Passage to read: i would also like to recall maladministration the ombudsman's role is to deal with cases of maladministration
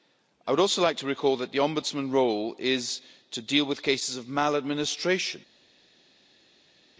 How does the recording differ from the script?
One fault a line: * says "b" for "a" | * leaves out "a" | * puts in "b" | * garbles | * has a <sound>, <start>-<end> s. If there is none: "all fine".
* says "that" for "maladministration"